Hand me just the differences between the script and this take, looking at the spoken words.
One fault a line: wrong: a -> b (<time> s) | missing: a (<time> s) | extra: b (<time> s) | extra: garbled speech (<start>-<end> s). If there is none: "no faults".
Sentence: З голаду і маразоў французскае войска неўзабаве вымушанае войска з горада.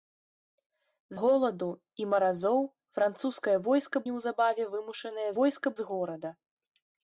no faults